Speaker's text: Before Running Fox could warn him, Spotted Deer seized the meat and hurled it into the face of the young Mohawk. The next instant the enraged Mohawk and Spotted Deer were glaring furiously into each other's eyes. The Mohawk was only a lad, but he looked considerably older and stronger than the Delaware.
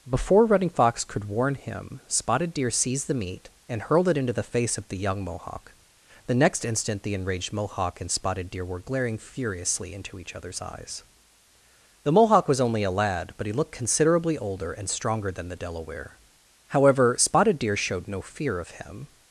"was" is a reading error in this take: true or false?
false